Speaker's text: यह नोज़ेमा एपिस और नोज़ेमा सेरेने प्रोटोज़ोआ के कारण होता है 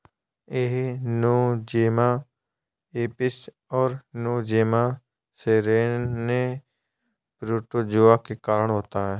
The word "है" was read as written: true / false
true